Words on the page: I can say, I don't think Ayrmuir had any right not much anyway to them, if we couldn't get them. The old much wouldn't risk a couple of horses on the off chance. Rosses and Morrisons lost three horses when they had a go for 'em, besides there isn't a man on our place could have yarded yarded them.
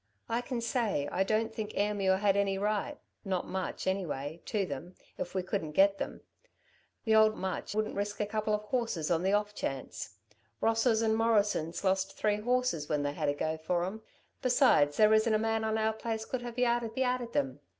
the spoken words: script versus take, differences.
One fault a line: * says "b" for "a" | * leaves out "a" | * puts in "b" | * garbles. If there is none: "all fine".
all fine